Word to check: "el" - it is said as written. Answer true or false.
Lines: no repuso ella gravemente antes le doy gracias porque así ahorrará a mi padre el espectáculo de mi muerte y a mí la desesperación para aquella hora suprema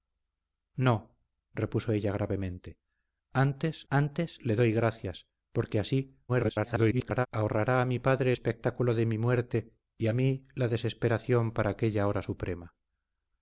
false